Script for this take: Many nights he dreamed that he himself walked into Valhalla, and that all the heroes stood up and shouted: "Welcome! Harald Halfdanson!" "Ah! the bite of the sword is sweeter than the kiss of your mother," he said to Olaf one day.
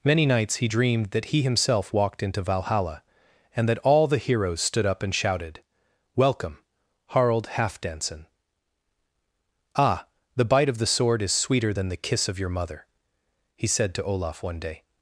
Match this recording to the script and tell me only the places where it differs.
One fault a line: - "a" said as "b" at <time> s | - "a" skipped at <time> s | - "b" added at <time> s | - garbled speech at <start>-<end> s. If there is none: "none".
none